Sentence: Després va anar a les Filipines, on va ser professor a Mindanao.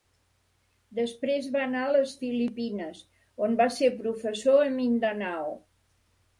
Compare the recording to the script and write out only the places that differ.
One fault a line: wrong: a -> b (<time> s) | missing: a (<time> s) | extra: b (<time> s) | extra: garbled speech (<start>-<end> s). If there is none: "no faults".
no faults